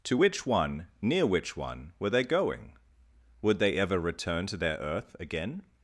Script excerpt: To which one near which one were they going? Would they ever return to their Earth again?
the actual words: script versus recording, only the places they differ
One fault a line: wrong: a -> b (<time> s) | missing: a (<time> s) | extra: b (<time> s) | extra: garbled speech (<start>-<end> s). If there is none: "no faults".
no faults